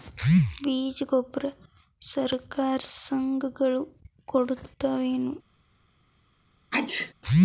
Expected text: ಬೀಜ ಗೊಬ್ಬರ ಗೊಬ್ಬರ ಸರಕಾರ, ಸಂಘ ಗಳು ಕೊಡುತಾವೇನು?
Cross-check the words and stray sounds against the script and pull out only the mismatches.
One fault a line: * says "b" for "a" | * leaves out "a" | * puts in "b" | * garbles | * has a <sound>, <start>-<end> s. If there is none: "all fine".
* leaves out "ಗೊಬ್ಬರ"
* has a sneeze, 6.7-7.1 s